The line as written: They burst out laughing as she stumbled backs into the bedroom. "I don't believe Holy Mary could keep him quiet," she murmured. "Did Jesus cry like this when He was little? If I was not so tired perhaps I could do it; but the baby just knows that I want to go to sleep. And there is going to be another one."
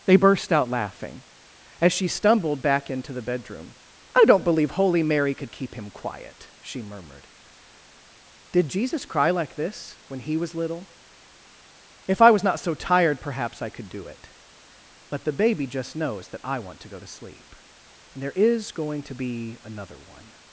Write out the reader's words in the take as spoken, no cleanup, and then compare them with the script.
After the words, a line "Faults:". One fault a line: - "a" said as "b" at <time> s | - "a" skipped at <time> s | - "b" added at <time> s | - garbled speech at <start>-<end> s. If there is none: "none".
They burst out laughing as she stumbled back into the bedroom. "I don't believe Holy Mary could keep him quiet," she murmured. "Did Jesus cry like this when He was little? If I was not so tired perhaps I could do it; but the baby just knows that I want to go to sleep. And there is going to be another one."
Faults:
- "backs" said as "back" at 2.6 s